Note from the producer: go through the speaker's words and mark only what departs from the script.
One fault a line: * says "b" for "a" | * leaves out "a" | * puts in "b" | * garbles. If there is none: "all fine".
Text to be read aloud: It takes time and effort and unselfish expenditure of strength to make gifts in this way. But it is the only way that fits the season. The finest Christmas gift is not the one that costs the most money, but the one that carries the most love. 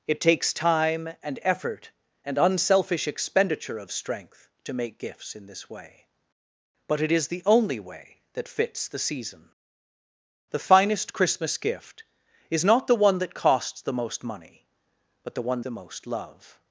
* leaves out "that carries"